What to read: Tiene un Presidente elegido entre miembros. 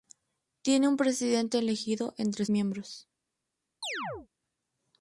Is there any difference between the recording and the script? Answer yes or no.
no